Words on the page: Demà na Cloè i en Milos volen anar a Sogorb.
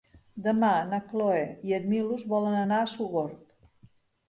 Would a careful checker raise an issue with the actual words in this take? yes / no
no